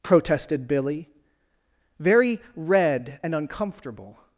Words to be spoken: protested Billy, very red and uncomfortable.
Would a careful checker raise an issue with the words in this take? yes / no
no